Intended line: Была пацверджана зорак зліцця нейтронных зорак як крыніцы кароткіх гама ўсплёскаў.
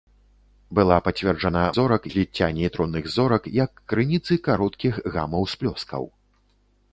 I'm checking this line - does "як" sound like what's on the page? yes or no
yes